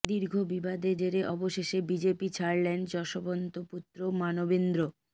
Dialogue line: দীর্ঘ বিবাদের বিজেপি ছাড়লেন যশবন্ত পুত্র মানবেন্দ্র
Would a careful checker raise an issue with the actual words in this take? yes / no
yes